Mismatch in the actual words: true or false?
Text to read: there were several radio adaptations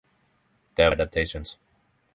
true